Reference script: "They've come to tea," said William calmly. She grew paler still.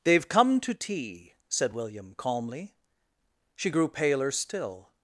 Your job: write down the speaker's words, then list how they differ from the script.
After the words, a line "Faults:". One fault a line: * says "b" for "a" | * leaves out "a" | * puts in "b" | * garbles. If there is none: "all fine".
"They've come to tea," said William calmly. She grew paler still.
Faults:
all fine